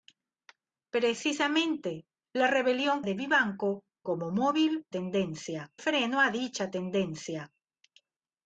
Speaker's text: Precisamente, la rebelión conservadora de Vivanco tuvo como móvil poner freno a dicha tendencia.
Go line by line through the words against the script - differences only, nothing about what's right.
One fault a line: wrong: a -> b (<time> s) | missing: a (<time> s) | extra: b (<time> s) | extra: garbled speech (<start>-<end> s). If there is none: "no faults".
missing: conservadora (3.0 s)
missing: tuvo (3.9 s)
wrong: poner -> tendencia (4.9 s)